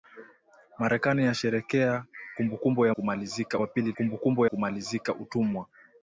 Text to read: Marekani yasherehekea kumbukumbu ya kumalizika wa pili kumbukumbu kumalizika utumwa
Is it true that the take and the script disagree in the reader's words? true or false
false